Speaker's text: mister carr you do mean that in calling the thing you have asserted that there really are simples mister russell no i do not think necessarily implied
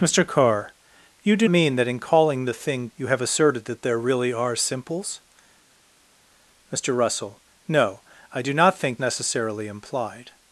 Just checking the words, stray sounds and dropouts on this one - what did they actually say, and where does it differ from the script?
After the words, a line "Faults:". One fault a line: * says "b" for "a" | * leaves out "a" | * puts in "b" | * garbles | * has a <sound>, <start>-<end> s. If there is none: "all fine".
mister carr you do mean that in calling the thing you have asserted that there really are simples mister russell no i do not think necessarily implied
Faults:
all fine